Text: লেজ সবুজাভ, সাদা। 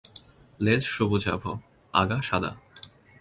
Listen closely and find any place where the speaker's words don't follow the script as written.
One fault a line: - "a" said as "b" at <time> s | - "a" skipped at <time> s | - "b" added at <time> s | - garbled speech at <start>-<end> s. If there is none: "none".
- "আগা" added at 1.9 s